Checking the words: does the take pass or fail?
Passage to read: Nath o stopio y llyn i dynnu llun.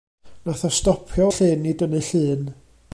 pass